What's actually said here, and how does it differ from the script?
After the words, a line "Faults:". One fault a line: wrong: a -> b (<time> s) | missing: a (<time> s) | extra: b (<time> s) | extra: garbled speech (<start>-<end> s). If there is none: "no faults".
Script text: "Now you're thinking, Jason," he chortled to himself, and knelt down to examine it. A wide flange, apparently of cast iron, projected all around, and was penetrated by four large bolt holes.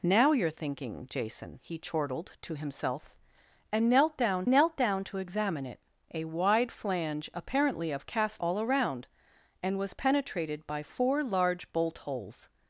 "Now you're thinking, Jason," he chortled to himself, and knelt down knelt down to examine it. A wide flange, apparently of cast all around, and was penetrated by four large bolt holes.
Faults:
extra: knelt down (4.5 s)
missing: iron projected (8.4 s)